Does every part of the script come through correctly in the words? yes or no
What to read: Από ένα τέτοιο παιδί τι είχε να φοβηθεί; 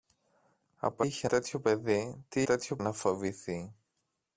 no